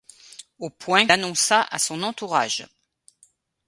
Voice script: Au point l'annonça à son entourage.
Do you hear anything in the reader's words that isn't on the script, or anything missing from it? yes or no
no